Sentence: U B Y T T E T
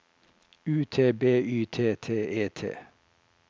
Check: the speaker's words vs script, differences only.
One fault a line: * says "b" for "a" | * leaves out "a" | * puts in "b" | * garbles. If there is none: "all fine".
* puts in "T"